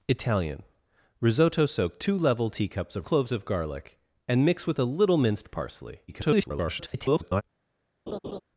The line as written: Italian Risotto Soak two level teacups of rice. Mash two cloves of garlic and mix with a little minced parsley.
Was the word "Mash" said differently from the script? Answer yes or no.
yes